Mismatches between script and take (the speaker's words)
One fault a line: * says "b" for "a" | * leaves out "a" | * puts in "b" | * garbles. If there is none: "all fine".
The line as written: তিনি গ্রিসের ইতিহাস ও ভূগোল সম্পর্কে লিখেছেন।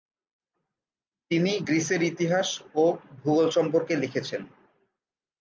all fine